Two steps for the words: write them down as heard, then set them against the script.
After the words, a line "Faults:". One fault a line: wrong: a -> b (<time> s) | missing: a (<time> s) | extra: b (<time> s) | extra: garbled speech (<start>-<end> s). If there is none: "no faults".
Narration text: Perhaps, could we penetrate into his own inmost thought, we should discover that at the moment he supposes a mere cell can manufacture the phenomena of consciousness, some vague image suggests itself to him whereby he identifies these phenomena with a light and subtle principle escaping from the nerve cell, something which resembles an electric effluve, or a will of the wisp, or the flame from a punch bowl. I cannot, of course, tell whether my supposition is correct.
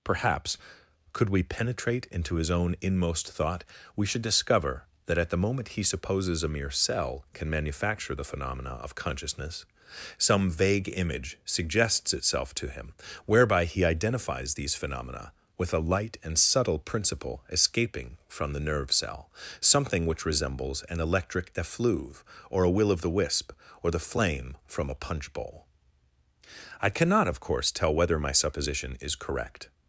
Perhaps, could we penetrate into his own inmost thought, we should discover that at the moment he supposes a mere cell can manufacture the phenomena of consciousness, some vague image suggests itself to him whereby he identifies these phenomena with a light and subtle principle escaping from the nerve cell, something which resembles an electric effluve, or a will of the wisp, or the flame from a punch bowl. I cannot, of course, tell whether my supposition is correct.
Faults:
no faults